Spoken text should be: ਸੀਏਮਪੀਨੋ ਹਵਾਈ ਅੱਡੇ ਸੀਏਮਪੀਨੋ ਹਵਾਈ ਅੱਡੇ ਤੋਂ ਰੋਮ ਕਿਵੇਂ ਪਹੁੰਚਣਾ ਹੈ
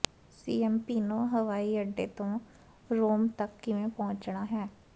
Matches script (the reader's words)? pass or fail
fail